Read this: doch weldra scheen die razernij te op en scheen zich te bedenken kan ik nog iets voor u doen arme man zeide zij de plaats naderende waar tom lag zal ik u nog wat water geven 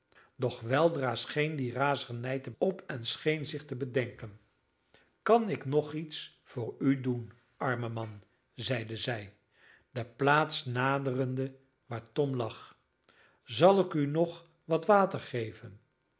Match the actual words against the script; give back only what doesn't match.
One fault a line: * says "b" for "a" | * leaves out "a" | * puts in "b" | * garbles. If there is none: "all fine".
all fine